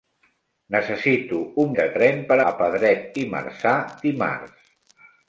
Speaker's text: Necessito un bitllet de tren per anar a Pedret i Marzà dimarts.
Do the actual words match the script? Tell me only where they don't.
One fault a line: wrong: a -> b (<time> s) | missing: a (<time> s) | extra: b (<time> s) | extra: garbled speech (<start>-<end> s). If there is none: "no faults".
missing: bitllet (1.8 s)
missing: anar (2.4 s)